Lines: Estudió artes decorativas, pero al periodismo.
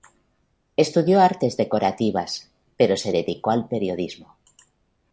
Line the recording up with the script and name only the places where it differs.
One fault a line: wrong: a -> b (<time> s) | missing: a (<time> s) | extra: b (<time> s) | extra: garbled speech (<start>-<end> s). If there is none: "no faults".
extra: se dedicó (2.9 s)